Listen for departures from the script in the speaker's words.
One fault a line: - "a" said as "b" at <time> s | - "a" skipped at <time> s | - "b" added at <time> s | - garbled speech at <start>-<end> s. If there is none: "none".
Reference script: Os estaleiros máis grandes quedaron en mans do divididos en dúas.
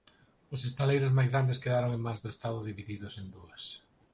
- "estado" added at 2.4 s